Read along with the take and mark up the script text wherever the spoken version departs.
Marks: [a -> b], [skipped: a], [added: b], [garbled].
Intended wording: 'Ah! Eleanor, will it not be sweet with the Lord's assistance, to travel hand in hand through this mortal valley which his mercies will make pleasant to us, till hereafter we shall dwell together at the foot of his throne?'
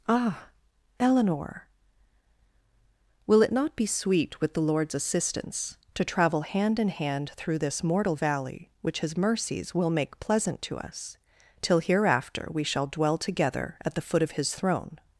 'Ah! Eleanor, will it not be sweet with the Lord's assistance, to travel hand in hand through this mortal valley which his mercies will make pleasant to us, till hereafter we shall dwell together at the foot of his throne?'